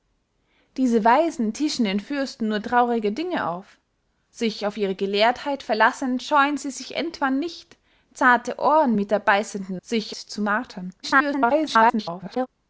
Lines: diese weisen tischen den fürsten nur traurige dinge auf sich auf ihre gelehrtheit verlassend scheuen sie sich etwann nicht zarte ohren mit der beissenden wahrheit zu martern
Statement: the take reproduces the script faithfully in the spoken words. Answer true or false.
false